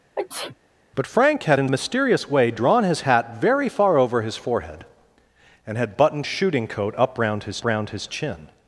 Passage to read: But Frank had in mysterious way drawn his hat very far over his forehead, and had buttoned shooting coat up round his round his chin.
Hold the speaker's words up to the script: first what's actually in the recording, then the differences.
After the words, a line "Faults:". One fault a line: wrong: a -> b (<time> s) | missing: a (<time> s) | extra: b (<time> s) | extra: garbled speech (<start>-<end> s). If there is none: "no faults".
But Frank had in mysterious way drawn his hat very far over his forehead, and had buttoned shooting coat up round his round his chin.
Faults:
no faults